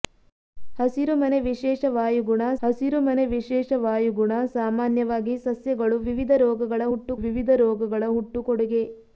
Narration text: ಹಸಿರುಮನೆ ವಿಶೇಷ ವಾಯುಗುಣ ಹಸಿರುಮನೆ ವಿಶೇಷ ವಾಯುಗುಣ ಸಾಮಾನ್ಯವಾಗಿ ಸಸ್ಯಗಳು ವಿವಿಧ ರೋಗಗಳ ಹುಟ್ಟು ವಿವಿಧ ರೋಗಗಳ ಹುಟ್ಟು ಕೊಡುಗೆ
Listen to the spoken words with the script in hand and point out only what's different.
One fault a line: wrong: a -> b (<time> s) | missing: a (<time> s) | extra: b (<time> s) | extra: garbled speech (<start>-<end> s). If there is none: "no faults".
no faults